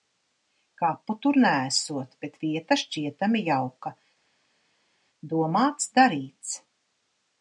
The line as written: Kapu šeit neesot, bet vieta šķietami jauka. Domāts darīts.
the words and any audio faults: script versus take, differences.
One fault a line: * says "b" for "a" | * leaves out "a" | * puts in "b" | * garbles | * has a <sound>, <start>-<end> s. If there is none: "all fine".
* says "tur" for "šeit"